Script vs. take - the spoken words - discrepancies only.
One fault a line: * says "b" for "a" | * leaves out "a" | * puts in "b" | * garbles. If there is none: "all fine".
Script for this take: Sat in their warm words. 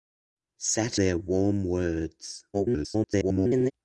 * leaves out "in"
* garbles